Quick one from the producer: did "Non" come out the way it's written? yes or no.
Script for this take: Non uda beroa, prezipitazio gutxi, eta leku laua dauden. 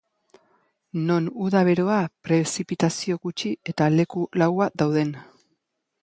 yes